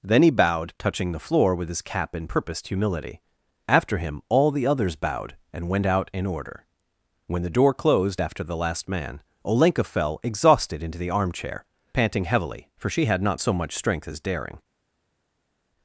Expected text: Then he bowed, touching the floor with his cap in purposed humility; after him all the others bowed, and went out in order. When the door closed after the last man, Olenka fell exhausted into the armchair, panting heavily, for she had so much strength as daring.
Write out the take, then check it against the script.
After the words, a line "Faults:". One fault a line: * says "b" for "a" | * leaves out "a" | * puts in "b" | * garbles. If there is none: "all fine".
Then he bowed, touching the floor with his cap in purposed humility; after him all the others bowed, and went out in order. When the door closed after the last man, Olenka fell exhausted into the armchair, panting heavily, for she had not so much strength as daring.
Faults:
* puts in "not"